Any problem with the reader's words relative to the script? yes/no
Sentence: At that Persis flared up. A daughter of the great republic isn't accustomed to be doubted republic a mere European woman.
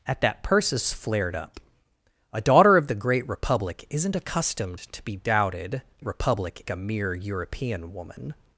no